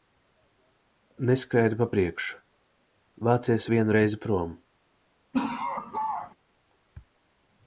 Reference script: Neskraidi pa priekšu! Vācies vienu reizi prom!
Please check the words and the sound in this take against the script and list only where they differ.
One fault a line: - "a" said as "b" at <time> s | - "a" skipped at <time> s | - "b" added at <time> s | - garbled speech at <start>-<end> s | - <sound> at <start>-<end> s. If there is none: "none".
- laugh at 5.3-6.4 s